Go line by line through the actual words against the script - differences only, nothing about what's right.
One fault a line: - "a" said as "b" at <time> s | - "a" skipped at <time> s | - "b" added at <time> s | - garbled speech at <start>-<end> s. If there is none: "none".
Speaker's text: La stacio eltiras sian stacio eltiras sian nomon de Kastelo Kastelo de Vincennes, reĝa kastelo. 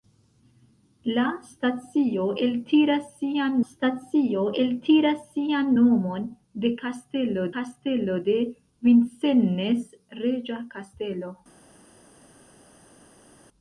none